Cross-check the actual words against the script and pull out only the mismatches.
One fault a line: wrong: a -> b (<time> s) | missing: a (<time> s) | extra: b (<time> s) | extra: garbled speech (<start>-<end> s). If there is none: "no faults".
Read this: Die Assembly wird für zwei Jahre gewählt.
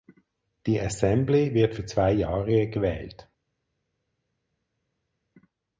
no faults